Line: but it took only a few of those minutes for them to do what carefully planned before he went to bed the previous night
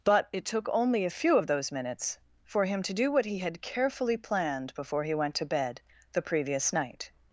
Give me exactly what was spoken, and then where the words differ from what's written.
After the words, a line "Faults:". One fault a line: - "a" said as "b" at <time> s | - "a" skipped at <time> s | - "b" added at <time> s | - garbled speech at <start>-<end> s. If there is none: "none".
but it took only a few of those minutes for him to do what he had carefully planned before he went to bed the previous night
Faults:
- "them" said as "him" at 2.6 s
- "he had" added at 3.2 s